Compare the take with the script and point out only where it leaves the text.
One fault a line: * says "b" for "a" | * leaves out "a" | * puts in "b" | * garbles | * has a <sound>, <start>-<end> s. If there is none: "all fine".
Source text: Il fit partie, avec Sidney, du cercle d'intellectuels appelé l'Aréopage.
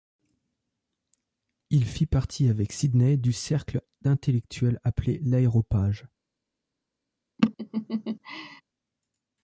* has a laugh, 7.4-8.6 s